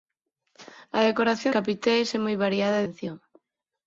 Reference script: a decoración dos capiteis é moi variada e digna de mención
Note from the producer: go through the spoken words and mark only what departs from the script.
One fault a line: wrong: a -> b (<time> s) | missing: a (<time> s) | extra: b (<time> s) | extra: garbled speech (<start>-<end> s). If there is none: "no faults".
missing: dos (1.5 s)
missing: digna de (2.9 s)